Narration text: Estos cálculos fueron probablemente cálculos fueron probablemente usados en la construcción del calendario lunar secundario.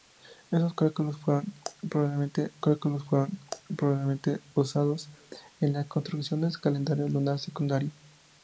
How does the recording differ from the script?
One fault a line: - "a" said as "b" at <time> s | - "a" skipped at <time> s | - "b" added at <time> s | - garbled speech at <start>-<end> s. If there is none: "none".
none